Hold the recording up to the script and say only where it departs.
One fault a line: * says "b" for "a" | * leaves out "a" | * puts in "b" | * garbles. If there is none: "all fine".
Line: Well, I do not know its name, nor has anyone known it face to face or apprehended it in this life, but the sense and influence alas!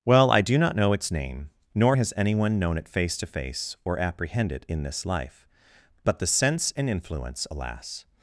* says "apprehend" for "apprehended"